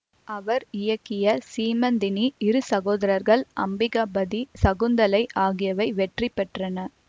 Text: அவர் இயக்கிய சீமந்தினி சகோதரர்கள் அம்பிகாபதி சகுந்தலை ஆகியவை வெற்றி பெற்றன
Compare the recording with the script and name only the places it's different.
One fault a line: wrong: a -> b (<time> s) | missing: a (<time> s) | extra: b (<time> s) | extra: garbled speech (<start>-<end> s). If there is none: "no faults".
extra: இரு (2.4 s)